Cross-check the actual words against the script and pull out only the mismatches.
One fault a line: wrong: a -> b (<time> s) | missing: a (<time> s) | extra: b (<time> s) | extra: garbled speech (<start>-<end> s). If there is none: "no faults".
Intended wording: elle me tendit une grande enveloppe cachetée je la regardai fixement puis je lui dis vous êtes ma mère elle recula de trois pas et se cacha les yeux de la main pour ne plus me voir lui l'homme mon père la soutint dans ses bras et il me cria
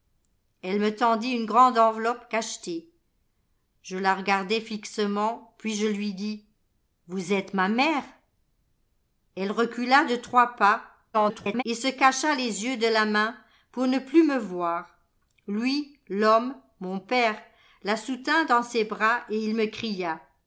extra: garbled speech (11.1-11.6 s)